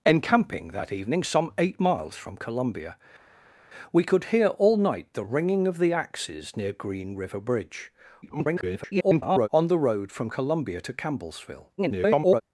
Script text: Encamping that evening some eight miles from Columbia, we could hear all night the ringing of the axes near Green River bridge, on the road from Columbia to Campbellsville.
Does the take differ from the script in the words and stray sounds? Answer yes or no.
yes